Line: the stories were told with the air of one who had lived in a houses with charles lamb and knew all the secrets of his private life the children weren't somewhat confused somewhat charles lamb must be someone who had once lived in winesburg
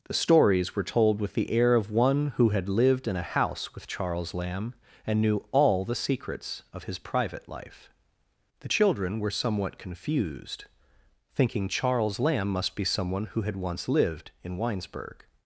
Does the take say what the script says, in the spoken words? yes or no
no